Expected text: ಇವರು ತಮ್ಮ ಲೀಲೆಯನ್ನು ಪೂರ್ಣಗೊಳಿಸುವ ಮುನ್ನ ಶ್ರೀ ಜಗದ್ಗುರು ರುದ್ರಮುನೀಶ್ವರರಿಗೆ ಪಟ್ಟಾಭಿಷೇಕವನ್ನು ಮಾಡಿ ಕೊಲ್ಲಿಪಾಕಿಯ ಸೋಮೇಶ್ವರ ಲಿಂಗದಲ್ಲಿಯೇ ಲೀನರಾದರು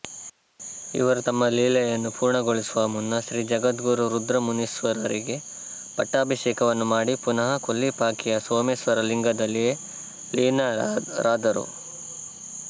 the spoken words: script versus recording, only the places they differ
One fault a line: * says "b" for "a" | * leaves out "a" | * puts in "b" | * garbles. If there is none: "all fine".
* puts in "ಪುನಃ"